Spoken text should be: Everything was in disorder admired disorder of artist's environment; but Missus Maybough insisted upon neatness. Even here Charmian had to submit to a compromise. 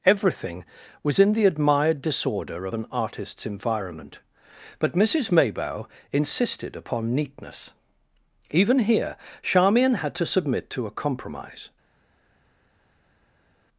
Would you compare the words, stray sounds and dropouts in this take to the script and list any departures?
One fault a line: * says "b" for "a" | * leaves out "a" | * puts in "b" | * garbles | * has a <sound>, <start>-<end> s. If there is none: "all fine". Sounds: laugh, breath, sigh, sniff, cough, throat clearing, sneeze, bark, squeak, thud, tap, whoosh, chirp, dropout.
* says "the" for "disorder"
* puts in "an"